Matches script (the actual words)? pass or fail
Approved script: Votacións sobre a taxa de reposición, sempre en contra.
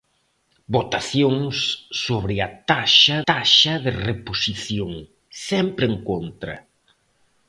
fail